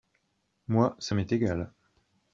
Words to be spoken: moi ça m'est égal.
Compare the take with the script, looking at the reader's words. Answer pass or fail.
pass